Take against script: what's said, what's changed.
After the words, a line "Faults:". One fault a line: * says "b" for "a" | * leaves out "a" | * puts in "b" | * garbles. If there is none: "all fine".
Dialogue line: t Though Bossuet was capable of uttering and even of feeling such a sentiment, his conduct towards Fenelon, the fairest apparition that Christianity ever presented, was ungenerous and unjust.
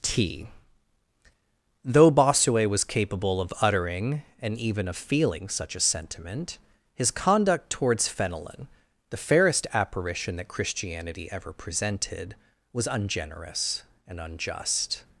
t Though Bossuet was capable of uttering and even of feeling such a sentiment, his conduct towards Fenelon, the fairest apparition that Christianity ever presented, was ungenerous and unjust.
Faults:
all fine